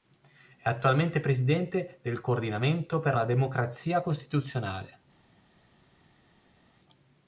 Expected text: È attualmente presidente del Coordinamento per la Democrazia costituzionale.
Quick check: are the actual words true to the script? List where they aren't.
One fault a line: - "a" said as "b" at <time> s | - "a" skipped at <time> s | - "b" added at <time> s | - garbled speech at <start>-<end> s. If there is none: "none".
none